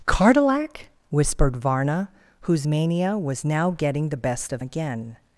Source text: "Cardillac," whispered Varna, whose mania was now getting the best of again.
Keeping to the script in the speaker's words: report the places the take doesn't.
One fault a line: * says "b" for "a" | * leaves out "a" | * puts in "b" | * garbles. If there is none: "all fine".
all fine